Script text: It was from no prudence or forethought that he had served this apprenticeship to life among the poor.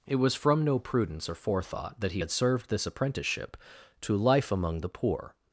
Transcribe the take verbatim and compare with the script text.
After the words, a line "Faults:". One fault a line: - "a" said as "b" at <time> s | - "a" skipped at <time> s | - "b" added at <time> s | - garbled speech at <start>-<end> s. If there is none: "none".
It was from no prudence or forethought that he had served this apprenticeship to life among the poor.
Faults:
none